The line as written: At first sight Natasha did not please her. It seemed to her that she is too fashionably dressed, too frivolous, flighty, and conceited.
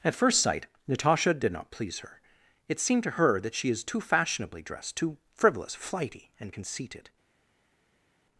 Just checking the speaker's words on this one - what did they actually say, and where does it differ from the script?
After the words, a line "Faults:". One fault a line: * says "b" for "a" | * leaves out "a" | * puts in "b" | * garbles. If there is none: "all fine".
At first sight Natasha did not please her. It seemed to her that she is too fashionably dressed, too frivolous, flighty, and conceited.
Faults:
all fine